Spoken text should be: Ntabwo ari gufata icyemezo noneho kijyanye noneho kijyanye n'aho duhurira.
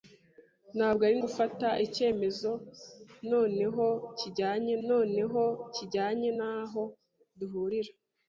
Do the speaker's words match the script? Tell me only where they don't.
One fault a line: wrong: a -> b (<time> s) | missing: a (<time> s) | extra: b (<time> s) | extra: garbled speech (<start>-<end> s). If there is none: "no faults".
no faults